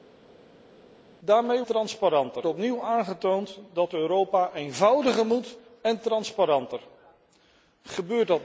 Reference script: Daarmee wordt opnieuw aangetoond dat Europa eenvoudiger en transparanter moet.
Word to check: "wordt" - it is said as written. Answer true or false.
false